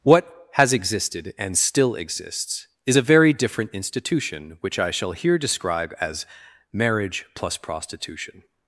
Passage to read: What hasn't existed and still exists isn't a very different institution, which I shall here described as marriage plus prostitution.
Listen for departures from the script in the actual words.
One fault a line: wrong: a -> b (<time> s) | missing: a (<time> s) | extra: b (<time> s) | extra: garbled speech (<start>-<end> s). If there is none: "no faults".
wrong: hasn't -> has (0.5 s)
wrong: isn't -> is (2.9 s)
wrong: described -> describe (5.4 s)